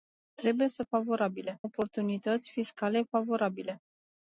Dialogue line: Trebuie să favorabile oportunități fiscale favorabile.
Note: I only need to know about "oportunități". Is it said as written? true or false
true